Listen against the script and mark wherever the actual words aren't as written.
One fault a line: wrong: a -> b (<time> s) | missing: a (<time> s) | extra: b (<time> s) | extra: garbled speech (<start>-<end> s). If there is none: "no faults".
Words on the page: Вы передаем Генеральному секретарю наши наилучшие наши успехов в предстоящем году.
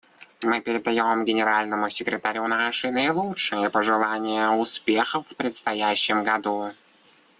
wrong: Вы -> Мы (0.4 s)
wrong: наши -> пожелания (3.7 s)